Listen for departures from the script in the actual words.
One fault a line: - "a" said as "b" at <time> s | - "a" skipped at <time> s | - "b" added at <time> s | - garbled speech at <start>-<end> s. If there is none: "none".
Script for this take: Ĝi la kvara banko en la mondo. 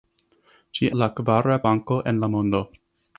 none